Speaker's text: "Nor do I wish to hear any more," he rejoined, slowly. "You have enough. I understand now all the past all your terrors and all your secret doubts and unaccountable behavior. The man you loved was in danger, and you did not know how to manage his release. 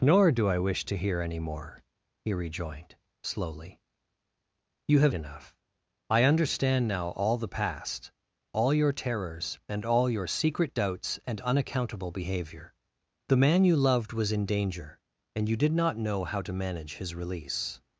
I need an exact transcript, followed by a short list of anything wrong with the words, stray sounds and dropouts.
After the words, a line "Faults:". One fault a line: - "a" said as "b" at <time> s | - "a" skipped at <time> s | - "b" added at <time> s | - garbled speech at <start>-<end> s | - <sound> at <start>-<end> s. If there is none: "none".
"Nor do I wish to hear any more," he rejoined, slowly. "You have enough. I understand now all the past all your terrors and all your secret doubts and unaccountable behavior. The man you loved was in danger, and you did not know how to manage his release.
Faults:
none